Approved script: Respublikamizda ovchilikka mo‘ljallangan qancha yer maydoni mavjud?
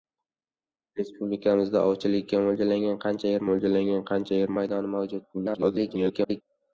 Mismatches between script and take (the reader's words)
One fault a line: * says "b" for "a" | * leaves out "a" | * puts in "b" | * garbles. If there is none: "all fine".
* puts in "mo‘ljallangan qancha yer"
* garbles